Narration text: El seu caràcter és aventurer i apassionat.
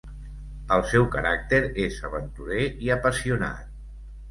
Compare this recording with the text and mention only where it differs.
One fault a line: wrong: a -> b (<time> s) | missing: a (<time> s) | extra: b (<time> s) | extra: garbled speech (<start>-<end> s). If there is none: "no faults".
no faults